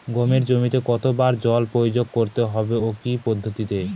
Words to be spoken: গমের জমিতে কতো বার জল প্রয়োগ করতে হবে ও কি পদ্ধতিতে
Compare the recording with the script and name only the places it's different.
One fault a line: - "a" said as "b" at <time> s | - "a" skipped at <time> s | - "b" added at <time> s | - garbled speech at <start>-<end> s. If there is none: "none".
none